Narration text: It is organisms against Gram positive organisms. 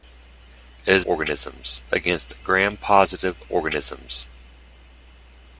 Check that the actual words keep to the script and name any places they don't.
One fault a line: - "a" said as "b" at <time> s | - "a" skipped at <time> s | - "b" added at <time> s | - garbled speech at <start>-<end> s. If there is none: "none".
none